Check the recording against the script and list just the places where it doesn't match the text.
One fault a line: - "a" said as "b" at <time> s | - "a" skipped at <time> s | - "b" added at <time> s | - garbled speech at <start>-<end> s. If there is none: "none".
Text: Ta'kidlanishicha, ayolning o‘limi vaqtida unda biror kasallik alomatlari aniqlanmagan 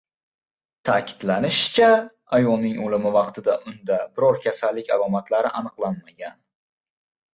none